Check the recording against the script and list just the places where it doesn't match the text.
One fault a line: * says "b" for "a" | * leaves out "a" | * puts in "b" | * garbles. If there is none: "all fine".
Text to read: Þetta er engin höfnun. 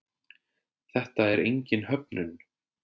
all fine